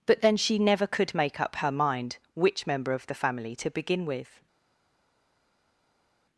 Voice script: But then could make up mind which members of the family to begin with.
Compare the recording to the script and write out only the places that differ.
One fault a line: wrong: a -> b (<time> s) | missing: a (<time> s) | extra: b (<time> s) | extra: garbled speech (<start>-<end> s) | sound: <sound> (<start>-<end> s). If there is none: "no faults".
extra: she never (0.4 s)
extra: her (1.6 s)
wrong: members -> member (2.6 s)